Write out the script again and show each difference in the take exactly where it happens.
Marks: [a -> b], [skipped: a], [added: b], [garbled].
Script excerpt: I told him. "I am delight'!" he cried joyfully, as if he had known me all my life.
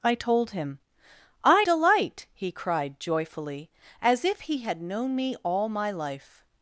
I told him. "I [skipped: am] delight'!" he cried joyfully, as if he had known me all my life.